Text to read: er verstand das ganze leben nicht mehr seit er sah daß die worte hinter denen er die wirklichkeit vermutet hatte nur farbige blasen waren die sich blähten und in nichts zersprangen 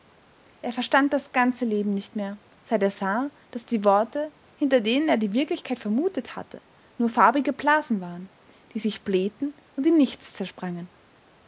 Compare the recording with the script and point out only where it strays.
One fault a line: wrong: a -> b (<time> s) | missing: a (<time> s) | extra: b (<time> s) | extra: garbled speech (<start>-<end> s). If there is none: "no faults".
no faults